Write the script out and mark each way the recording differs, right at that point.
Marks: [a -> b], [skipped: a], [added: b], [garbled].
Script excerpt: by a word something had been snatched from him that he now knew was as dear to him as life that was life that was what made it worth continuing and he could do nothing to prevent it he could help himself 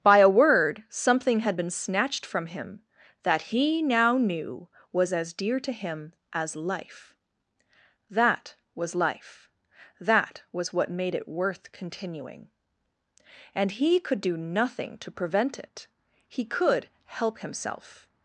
by a word something had been snatched from him that he now knew was as dear to him as life that was life that was what made it worth continuing and he could do nothing to prevent it he could help himself